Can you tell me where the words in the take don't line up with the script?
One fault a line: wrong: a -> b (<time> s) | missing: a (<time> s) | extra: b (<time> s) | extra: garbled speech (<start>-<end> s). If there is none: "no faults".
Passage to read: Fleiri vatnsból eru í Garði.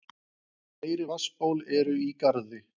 no faults